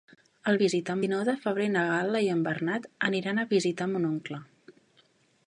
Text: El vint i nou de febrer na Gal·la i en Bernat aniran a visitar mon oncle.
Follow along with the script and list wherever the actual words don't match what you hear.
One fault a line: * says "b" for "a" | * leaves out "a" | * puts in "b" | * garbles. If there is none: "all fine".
* says "visitar" for "vint"